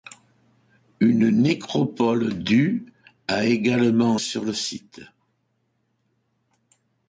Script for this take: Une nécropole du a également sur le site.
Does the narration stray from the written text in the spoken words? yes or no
no